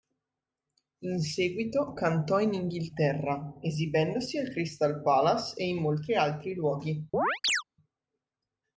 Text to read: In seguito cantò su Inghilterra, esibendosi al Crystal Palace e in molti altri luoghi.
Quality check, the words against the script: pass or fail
fail